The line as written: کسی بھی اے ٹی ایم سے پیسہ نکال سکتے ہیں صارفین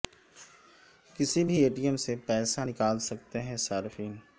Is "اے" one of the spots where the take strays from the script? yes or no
no